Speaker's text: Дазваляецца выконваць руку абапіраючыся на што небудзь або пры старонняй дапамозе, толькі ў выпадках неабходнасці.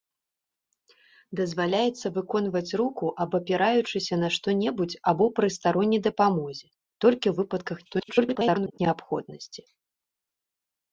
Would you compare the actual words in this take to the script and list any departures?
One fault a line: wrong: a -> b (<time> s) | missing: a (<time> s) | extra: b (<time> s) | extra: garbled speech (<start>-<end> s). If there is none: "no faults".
extra: garbled speech (7.8-8.8 s)